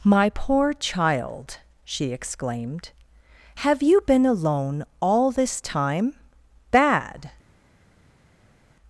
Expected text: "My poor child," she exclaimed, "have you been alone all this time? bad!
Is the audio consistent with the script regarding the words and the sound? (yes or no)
yes